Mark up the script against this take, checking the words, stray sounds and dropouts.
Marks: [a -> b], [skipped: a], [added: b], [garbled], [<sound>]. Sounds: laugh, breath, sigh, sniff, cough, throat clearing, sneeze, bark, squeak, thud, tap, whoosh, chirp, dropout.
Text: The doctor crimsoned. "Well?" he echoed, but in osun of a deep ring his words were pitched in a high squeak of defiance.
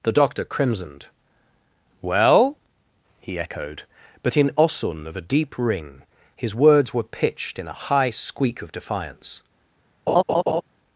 The doctor crimsoned. "Well?" he echoed, but in osun of a deep ring his words were pitched in a high squeak of defiance. [laugh]